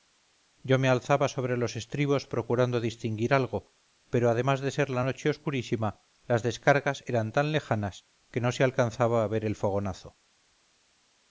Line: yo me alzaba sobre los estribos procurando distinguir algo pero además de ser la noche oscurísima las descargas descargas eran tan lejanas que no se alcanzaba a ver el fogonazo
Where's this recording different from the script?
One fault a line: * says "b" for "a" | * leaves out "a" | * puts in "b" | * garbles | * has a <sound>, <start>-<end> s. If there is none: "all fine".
* leaves out "descargas"